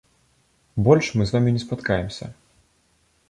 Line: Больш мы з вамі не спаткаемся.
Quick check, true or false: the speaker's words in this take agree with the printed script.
true